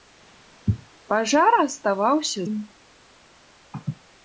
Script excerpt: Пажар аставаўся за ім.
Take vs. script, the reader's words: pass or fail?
fail